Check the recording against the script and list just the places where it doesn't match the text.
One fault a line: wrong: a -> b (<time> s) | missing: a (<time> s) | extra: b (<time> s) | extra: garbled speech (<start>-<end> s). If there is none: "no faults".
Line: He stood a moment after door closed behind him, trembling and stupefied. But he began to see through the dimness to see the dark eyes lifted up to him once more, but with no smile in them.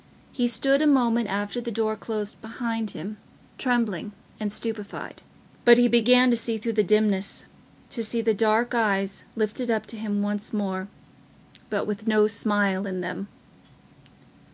extra: the (1.6 s)